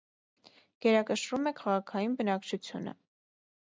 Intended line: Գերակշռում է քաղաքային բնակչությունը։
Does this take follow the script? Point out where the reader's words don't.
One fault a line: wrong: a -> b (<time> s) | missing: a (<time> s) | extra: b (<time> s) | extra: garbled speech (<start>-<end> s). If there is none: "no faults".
no faults